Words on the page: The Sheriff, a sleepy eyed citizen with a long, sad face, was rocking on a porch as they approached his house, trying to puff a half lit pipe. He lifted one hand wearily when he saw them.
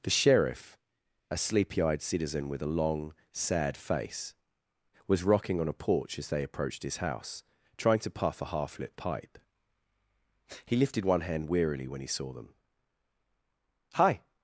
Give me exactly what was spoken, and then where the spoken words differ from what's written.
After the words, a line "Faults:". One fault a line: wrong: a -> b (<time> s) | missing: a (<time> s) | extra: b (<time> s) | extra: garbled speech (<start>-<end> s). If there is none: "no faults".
The Sheriff, a sleepy eyed citizen with a long, sad face, was rocking on a porch as they approached his house, trying to puff a half lit pipe. He lifted one hand wearily when he saw them. "Hi
Faults:
extra: Hi (14.0 s)